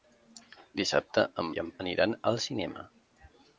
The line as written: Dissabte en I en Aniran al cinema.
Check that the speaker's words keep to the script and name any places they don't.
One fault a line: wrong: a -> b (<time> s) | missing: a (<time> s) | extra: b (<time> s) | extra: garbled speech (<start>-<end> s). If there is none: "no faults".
no faults